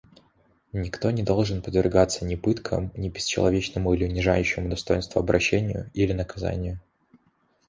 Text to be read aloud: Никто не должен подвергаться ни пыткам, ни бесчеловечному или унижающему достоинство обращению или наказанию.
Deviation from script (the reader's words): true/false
false